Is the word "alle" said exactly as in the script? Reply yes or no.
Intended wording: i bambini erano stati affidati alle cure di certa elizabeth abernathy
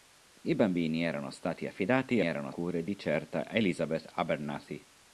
no